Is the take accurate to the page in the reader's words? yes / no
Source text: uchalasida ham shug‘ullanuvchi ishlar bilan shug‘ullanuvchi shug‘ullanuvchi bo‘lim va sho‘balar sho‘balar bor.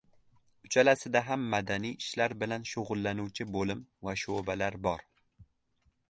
no